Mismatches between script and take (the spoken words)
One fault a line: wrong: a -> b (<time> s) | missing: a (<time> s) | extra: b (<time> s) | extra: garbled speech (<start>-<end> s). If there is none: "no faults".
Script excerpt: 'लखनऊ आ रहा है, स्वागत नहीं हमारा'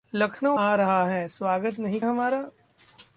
no faults